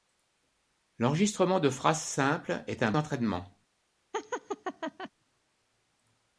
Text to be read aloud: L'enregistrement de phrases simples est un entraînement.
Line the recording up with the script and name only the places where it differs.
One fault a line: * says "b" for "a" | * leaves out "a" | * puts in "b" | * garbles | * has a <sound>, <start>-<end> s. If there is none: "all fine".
* has a laugh, 4.1-5.1 s